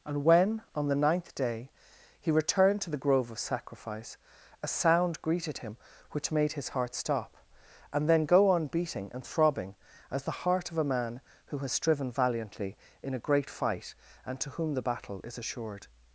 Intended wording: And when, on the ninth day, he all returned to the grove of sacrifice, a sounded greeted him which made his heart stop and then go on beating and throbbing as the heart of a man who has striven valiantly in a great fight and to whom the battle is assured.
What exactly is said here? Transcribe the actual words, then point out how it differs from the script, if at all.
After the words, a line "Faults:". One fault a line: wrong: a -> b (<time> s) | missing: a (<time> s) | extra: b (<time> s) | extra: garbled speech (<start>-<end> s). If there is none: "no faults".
And when, on the ninth day, he returned to the grove of sacrifice, a sound greeted him which made his heart stop and then go on beating and throbbing as the heart of a man who has striven valiantly in a great fight and to whom the battle is assured.
Faults:
missing: all (2.3 s)
wrong: sounded -> sound (4.7 s)